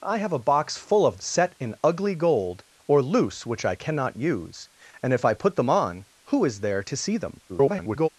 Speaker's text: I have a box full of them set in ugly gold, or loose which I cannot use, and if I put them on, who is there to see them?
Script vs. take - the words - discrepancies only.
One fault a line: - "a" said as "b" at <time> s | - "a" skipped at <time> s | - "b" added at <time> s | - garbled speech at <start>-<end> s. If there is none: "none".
- "them" skipped at 1.2 s
- garbled speech at 7.5-8.1 s